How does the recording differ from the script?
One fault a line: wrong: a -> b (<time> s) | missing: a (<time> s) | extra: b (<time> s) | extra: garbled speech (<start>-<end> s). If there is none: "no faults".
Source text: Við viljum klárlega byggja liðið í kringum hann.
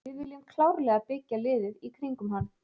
no faults